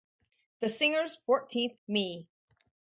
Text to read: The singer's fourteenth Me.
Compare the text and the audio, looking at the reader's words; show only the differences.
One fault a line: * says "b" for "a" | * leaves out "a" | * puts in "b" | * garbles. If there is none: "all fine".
all fine